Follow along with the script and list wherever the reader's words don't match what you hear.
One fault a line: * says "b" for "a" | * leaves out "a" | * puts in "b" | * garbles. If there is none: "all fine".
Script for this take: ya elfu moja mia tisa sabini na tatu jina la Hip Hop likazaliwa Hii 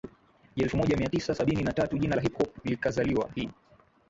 all fine